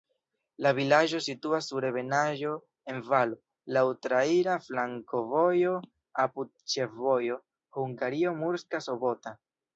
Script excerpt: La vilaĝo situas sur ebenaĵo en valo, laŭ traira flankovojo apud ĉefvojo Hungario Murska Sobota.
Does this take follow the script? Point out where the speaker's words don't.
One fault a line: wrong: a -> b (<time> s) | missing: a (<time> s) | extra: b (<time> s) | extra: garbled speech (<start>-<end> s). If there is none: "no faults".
no faults